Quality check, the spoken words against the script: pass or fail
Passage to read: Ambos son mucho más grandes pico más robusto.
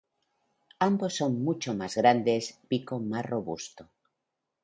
pass